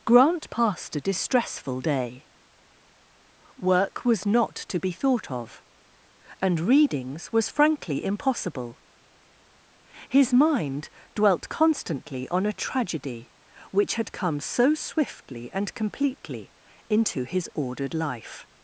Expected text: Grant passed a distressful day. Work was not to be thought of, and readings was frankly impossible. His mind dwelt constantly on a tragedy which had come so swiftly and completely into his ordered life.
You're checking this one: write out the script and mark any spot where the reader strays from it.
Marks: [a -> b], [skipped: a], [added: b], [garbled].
Grant passed a distressful day. Work was not to be thought of, and readings was frankly impossible. His mind dwelt constantly on a tragedy which had come so swiftly and completely into his ordered life.